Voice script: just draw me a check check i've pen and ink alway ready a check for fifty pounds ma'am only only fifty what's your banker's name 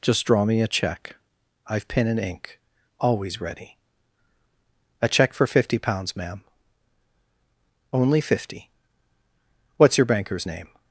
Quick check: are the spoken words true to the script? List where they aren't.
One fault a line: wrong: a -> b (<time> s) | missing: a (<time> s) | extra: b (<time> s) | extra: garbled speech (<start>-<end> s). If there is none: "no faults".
missing: check (1.1 s)
wrong: alway -> always (3.0 s)
missing: only (8.2 s)